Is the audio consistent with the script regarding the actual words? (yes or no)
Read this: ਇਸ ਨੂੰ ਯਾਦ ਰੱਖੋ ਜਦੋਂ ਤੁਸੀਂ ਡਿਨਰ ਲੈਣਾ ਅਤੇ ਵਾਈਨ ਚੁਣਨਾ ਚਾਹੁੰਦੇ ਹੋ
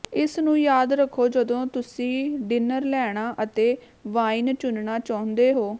yes